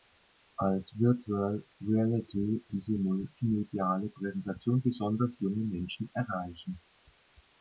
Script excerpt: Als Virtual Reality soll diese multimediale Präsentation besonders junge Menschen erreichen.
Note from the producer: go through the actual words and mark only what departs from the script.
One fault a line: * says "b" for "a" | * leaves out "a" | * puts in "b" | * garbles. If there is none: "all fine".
* leaves out "soll"